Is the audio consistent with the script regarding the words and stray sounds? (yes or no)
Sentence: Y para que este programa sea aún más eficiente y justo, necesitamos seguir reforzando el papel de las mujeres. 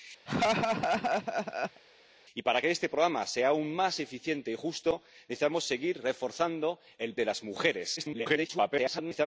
no